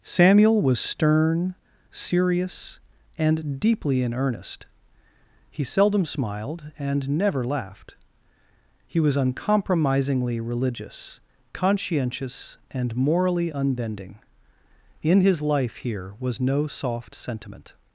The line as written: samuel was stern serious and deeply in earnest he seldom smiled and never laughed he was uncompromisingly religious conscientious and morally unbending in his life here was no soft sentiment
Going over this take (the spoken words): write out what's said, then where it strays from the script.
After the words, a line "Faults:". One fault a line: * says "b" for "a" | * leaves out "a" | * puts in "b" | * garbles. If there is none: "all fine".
samuel was stern serious and deeply in earnest he seldom smiled and never laughed he was uncompromisingly religious conscientious and morally unbending in his life here was no soft sentiment
Faults:
all fine